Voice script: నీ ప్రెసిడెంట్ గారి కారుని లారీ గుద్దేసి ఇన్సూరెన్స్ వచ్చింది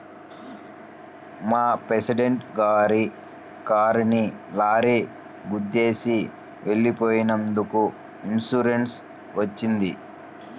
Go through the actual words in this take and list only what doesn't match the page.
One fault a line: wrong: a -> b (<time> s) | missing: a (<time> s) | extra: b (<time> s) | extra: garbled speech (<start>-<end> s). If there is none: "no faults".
wrong: నీ -> మా (1.5 s)
extra: వెళ్ళిపోయినందుకు (6.6 s)